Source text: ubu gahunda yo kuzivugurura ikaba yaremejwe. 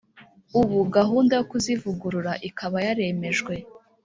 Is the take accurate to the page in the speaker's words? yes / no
yes